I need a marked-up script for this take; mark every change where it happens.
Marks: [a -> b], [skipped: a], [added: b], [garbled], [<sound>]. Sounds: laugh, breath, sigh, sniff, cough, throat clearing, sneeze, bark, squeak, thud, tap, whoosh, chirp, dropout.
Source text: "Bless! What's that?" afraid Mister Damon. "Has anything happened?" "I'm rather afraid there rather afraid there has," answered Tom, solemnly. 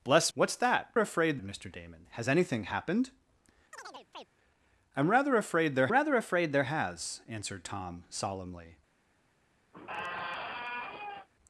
"Bless! What's that?" afraid Mister Damon. "Has anything happened?" [chirp] "I'm rather afraid there rather afraid there has," answered Tom, solemnly. [squeak]